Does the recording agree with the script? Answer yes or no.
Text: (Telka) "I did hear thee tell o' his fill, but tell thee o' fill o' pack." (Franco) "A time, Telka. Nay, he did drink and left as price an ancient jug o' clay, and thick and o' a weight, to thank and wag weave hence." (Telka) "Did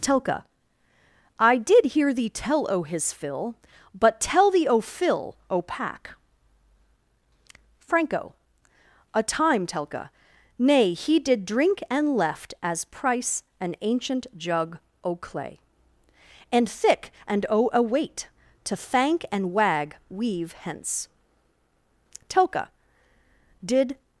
yes